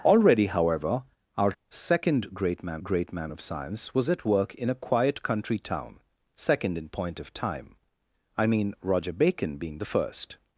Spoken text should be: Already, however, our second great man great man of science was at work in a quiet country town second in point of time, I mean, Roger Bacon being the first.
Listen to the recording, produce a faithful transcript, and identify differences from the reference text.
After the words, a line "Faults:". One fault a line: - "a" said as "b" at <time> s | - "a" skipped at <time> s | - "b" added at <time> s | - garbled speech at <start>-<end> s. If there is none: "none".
Already, however, our second great man great man of science was at work in a quiet country town second in point of time, I mean, Roger Bacon being the first.
Faults:
none